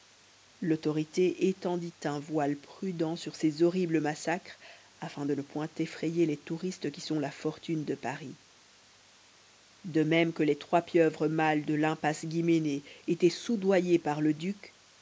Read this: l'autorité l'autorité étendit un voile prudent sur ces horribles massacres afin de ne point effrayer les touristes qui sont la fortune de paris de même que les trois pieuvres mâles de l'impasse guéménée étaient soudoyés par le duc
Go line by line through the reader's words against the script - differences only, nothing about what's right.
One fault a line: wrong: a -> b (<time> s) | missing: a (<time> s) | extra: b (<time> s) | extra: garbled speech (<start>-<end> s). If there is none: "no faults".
missing: l'autorité (1.5 s)